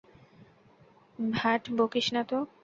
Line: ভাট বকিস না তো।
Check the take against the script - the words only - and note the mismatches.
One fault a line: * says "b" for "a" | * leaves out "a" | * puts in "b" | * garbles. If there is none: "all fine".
all fine